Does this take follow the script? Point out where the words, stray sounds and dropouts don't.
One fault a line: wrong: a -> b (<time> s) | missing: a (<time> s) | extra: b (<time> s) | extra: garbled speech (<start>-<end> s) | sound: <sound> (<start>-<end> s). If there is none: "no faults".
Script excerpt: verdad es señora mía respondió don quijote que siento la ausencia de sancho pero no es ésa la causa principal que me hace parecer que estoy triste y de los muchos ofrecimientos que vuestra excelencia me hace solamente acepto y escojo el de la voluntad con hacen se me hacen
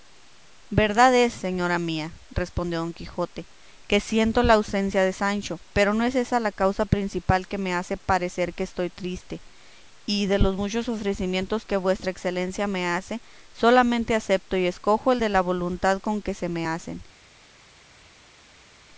wrong: hacen -> que (16.2 s)